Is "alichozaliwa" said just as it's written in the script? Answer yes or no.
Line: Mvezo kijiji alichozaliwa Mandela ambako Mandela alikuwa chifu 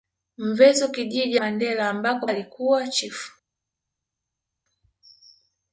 no